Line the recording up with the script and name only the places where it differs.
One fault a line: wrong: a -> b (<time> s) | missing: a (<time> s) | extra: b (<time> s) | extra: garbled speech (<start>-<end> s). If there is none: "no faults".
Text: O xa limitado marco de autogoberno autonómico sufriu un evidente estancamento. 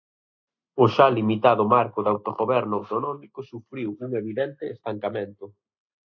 no faults